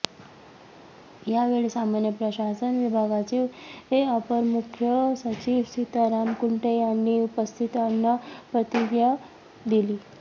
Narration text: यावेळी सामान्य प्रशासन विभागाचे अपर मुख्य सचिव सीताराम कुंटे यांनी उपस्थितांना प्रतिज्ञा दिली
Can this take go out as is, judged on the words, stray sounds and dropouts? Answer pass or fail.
pass